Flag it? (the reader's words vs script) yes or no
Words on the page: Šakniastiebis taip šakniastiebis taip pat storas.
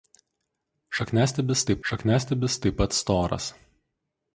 no